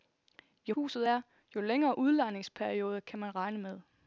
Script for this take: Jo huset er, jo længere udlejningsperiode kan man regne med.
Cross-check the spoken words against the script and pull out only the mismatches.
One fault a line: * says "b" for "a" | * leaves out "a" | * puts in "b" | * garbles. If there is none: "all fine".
all fine